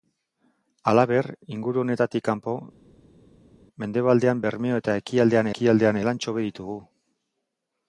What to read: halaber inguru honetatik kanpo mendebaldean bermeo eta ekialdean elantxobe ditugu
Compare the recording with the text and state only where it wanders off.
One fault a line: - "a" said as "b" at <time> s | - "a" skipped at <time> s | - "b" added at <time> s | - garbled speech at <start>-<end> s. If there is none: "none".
- "ekialdean" added at 5.5 s